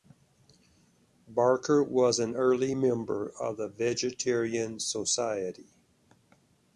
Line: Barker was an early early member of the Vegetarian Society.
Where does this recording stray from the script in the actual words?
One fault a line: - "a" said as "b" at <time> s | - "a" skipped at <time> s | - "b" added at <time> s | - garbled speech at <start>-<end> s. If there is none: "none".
- "early" skipped at 2.7 s